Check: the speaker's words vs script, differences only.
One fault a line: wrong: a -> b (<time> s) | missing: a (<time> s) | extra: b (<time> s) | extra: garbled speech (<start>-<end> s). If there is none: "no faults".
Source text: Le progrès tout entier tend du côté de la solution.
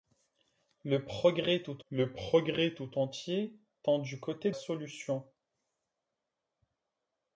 extra: le progrès tout (1.9 s)
missing: de la (4.5 s)